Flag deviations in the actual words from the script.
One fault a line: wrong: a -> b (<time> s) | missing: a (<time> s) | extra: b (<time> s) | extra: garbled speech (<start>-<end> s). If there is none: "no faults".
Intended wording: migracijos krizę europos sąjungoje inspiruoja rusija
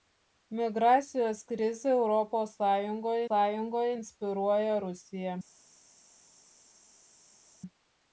extra: sąjungoje (3.3 s)